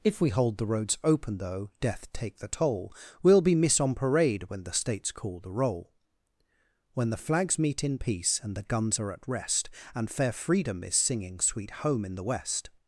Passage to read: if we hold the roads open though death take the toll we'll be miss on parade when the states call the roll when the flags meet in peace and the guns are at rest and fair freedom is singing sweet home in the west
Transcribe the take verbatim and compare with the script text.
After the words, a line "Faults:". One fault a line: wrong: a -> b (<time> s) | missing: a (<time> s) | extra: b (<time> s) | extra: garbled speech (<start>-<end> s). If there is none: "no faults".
if we hold the roads open though death take the toll we'll be miss on parade when the states call the roll when the flags meet in peace and the guns are at rest and fair freedom is singing sweet home in the west
Faults:
no faults